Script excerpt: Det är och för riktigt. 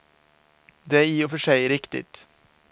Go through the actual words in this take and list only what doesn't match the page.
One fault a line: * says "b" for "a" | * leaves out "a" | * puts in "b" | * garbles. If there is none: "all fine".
* puts in "i"
* puts in "sig"